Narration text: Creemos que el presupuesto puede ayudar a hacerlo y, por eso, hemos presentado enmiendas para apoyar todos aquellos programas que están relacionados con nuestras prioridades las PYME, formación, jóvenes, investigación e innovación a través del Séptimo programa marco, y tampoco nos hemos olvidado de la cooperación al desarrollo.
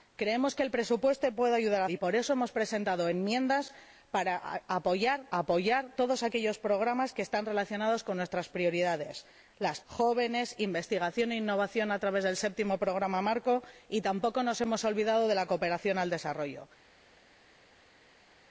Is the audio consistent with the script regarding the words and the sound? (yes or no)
no